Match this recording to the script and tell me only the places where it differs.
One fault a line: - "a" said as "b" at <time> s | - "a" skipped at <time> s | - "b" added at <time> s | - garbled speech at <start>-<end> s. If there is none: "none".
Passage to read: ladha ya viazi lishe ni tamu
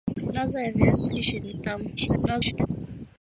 - garbled speech at 2.0-2.7 s